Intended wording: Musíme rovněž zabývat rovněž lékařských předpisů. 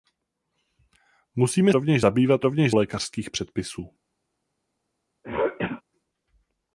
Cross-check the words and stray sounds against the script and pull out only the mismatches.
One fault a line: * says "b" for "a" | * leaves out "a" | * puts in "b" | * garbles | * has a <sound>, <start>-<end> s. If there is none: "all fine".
* has a throat clearing, 5.2-5.8 s